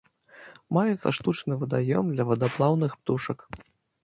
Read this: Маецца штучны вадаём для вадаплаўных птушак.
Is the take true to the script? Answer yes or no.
yes